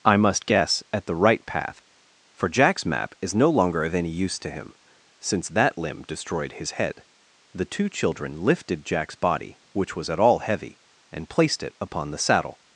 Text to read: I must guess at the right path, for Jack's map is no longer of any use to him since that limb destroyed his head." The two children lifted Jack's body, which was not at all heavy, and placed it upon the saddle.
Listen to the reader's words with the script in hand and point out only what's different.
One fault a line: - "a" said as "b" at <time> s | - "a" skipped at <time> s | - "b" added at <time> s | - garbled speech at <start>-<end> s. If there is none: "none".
- "not" skipped at 10.1 s